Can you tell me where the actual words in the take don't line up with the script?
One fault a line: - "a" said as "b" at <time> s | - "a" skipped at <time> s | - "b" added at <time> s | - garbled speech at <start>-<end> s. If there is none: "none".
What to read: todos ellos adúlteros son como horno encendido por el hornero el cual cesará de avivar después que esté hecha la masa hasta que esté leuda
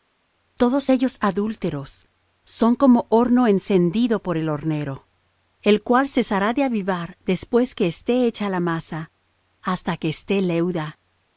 none